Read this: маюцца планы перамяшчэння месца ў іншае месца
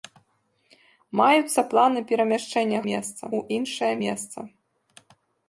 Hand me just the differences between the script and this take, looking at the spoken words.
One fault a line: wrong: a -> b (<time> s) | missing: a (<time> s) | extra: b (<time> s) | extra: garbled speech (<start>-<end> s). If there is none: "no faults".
no faults